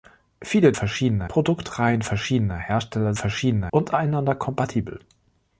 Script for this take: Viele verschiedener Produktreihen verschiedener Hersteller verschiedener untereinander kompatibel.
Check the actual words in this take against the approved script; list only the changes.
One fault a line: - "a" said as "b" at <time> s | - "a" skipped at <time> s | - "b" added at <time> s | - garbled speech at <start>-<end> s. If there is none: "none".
none